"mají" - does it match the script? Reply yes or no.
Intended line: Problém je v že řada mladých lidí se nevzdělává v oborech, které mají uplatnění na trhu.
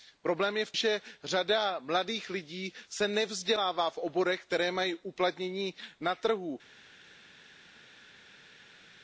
yes